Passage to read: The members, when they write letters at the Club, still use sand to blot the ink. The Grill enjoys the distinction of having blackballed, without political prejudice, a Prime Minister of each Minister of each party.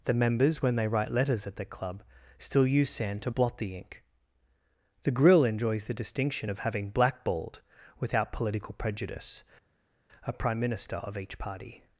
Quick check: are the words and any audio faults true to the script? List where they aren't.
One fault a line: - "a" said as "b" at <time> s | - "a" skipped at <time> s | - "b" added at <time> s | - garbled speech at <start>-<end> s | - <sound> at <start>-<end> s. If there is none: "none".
- "Minister of each" skipped at 11.4 s